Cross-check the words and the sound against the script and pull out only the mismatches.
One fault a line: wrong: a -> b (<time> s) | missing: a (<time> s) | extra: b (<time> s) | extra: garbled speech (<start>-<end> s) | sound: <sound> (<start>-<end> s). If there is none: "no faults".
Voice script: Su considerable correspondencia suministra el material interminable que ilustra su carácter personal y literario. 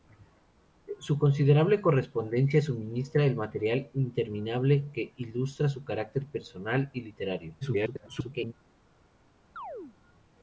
extra: garbled speech (7.6-8.5 s)
sound: chirp (9.6-10.0 s)